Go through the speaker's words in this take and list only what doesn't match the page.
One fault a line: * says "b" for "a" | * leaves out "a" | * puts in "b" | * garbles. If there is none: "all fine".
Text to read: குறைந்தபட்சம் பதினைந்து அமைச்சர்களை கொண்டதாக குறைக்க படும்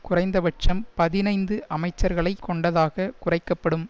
all fine